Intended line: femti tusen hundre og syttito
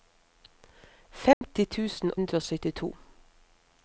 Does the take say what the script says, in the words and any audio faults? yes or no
no